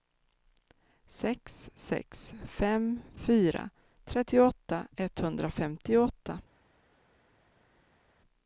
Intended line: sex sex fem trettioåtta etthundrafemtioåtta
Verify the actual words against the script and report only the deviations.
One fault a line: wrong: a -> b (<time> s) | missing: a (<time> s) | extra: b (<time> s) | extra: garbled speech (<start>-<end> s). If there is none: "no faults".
extra: fyra (3.2 s)